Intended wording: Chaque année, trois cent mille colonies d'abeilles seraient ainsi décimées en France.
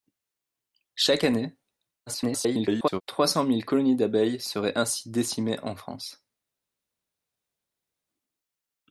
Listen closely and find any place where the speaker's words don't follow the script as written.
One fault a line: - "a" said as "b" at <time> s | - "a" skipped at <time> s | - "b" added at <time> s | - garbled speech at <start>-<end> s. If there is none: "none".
- garbled speech at 2.1-3.0 s